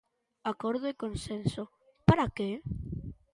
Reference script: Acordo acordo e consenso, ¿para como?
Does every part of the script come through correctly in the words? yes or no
no